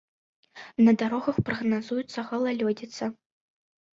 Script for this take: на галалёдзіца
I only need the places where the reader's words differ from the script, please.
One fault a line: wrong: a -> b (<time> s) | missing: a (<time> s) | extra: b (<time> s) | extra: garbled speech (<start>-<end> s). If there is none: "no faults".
extra: дарогах прагназуецца (1.0 s)